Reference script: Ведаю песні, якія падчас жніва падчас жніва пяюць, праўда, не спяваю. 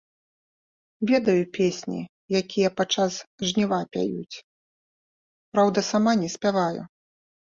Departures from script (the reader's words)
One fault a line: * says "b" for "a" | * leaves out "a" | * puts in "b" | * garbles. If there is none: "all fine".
* leaves out "падчас жніва"
* puts in "сама"